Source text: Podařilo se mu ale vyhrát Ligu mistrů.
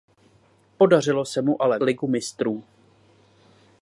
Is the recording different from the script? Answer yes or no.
yes